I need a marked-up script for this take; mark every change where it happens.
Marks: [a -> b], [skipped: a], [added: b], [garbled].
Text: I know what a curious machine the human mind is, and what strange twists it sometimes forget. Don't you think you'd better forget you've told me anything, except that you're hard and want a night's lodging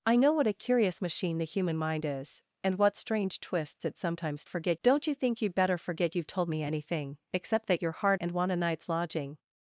I know what a curious machine the human mind is, and what strange twists it sometimes forget. Don't you think you'd better forget you've told me anything, except that you're hard and want a night's lodging